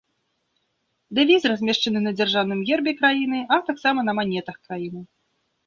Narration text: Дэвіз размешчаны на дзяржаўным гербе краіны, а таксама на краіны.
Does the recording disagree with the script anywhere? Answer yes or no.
yes